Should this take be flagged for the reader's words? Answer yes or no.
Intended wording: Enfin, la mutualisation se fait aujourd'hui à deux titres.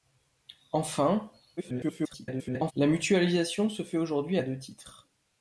yes